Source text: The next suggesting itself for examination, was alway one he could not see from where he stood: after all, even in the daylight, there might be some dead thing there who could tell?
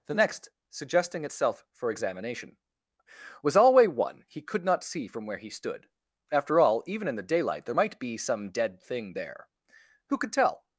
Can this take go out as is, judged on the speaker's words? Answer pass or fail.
pass